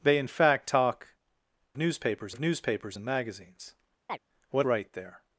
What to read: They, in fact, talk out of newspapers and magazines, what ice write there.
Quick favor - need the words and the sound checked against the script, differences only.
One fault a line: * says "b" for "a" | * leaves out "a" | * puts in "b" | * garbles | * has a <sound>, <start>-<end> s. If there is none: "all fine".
* says "newspapers" for "out"
* has a chirp, 4.1-4.2 s
* leaves out "ice"